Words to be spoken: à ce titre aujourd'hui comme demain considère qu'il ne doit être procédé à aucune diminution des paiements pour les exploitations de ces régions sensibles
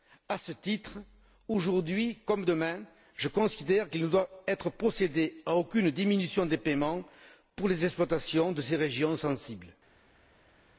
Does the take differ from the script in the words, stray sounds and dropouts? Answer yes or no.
yes